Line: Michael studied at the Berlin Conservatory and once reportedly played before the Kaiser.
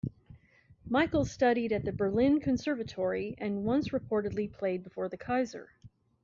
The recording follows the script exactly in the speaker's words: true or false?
true